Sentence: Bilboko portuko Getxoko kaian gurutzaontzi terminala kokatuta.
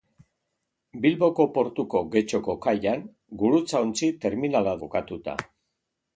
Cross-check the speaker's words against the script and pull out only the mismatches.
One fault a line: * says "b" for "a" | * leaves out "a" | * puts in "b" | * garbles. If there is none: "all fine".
all fine